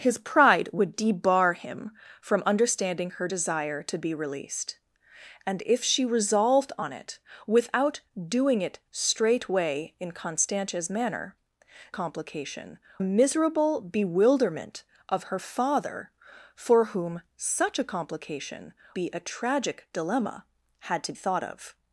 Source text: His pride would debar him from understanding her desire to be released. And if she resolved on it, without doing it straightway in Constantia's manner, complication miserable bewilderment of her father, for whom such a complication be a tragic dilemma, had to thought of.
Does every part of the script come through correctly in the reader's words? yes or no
yes